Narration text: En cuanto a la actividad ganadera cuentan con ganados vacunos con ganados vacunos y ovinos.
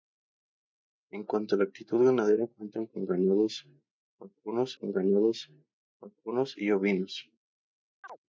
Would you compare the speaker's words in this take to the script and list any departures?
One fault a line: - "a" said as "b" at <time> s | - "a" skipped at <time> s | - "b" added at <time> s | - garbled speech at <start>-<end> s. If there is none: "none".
none